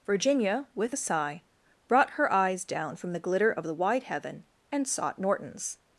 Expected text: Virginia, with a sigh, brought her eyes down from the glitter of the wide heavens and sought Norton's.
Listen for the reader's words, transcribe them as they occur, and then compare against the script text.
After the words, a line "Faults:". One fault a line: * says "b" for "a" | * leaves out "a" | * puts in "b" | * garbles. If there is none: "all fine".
Virginia, with a sigh, brought her eyes down from the glitter of the wide heaven and sought Norton's.
Faults:
* says "heaven" for "heavens"